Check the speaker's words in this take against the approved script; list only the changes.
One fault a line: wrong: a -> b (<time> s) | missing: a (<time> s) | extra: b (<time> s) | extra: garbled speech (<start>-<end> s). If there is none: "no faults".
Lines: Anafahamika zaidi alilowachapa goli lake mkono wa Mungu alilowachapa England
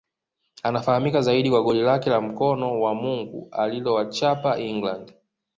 wrong: alilowachapa -> kwa (1.5 s)
extra: la (2.1 s)